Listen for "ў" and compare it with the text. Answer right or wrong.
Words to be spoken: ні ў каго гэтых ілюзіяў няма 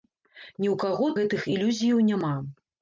right